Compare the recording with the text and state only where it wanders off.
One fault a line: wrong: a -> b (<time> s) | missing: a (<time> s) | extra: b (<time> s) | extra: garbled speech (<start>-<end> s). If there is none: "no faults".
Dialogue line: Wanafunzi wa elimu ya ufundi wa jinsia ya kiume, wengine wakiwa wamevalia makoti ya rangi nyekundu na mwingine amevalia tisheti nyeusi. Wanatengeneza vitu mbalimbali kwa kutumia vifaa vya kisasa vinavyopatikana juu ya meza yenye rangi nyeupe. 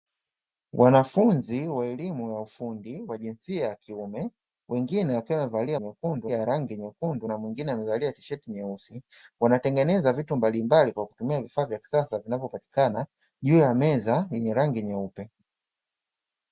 wrong: makoti -> nyekundu (5.8 s)